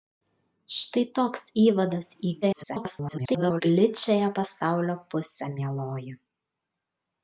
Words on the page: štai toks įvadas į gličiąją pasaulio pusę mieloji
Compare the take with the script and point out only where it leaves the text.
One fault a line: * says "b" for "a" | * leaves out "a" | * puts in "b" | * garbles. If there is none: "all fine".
* garbles